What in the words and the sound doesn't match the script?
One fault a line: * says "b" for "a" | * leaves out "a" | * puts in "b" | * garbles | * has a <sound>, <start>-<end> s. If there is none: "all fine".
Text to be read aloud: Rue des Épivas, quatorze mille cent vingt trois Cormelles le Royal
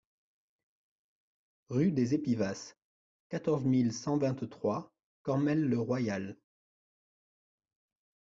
all fine